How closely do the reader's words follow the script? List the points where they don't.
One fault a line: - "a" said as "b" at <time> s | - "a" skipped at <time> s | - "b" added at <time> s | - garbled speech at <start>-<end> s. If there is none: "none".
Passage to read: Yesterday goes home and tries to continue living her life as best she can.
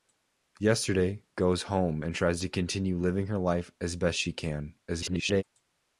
- garbled speech at 4.9-5.4 s